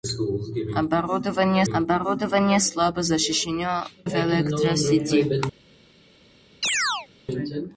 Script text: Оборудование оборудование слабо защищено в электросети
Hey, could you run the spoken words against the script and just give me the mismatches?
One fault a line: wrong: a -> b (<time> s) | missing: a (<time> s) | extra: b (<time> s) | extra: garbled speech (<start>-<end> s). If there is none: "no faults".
no faults